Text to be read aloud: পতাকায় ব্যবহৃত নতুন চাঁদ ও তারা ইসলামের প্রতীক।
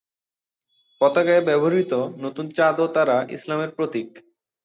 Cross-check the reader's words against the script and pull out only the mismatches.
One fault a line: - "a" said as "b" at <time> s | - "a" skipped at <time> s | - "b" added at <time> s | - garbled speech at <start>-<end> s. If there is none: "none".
none